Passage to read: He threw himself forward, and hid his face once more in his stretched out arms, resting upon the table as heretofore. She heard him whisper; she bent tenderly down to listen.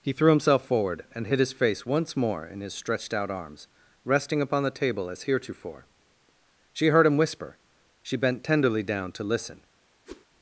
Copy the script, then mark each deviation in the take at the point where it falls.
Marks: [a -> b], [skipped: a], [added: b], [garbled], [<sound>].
He threw himself forward, and hid his face once more in his stretched out arms, resting upon the table as heretofore. She heard him whisper; she bent tenderly down to listen. [whoosh]